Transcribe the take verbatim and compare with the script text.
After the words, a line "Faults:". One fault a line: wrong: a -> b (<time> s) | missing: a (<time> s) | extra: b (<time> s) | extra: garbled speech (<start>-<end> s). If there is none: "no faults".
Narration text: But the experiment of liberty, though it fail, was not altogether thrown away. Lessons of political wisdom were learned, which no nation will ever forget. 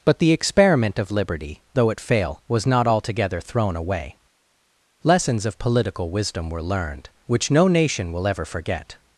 But the experiment of liberty, though it fail, was not altogether thrown away. Lessons of political wisdom were learned, which no nation will ever forget.
Faults:
no faults